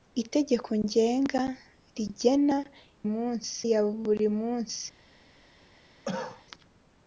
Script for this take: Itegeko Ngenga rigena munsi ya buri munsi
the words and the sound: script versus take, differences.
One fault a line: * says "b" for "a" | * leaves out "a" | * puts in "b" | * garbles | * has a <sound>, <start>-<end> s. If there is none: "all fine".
* has a cough, 6.0-6.4 s